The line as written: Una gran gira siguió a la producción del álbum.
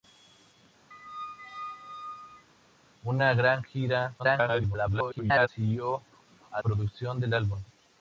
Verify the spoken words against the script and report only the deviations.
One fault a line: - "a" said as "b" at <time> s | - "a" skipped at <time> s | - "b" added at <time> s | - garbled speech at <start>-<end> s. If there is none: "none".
- garbled speech at 4.2-5.5 s
- "la" skipped at 6.6 s